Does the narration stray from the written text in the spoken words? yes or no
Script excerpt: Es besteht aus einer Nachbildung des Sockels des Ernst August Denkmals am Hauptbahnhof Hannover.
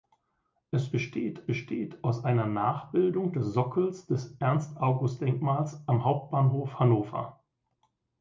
yes